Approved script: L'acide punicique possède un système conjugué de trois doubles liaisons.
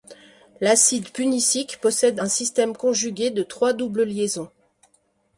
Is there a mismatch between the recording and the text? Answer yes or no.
no